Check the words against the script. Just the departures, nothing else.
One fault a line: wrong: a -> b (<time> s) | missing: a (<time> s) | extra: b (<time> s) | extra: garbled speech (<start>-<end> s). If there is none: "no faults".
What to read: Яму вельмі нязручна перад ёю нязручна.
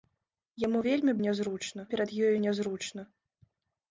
no faults